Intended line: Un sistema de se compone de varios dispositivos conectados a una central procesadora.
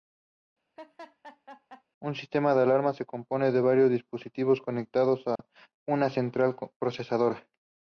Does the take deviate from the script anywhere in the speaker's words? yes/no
yes